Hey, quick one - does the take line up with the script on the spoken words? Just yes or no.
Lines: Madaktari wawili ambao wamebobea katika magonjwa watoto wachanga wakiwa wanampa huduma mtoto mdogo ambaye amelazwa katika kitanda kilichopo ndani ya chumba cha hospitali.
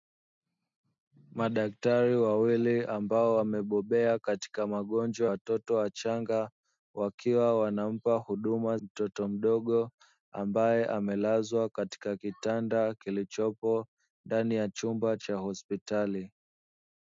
yes